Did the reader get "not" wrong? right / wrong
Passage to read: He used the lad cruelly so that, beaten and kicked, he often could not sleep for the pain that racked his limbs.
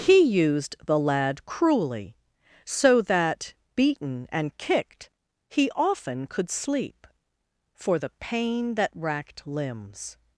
wrong